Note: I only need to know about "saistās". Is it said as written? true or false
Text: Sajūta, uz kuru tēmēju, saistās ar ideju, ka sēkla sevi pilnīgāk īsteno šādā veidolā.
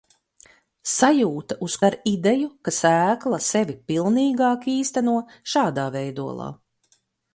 false